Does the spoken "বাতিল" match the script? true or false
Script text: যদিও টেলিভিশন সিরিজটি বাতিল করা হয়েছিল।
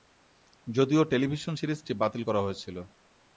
true